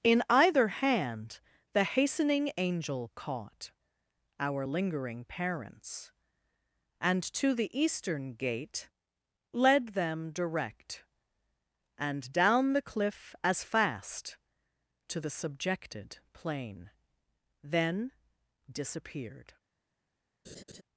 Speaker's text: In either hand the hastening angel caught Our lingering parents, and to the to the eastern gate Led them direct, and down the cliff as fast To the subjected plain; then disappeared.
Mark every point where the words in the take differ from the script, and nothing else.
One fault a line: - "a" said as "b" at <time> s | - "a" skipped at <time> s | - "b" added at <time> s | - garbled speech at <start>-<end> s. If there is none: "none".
- "to the" skipped at 7.7 s